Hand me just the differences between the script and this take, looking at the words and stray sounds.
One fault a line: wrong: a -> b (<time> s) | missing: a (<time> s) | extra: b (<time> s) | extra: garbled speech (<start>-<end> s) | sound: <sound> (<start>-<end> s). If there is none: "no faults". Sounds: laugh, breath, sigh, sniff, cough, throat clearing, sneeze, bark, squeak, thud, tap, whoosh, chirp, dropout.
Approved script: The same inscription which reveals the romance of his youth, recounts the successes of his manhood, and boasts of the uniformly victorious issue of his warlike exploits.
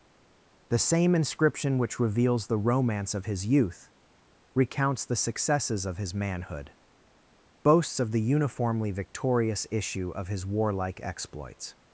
missing: and (6.7 s)